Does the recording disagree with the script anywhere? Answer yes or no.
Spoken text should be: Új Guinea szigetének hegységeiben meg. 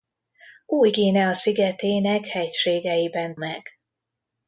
no